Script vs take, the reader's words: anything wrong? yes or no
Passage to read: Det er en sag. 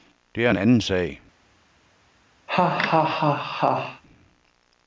yes